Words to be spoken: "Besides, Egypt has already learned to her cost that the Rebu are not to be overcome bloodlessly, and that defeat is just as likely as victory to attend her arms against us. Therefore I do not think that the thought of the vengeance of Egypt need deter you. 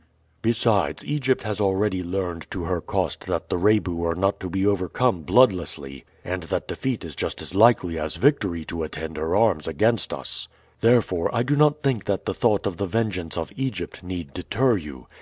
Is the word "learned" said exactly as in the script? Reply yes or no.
yes